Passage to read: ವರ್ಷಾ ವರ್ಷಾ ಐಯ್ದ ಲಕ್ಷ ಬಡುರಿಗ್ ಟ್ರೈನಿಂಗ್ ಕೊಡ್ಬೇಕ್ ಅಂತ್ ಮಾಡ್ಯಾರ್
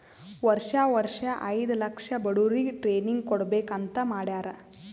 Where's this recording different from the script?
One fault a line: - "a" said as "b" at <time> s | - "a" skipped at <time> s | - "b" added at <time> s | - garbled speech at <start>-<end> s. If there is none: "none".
none